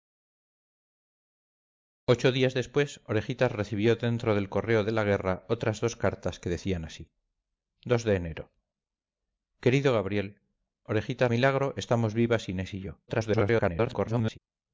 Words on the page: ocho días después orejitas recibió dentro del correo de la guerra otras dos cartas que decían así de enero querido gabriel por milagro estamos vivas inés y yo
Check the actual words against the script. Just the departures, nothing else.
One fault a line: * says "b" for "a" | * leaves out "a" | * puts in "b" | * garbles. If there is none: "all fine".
* says "orejitas" for "por"
* garbles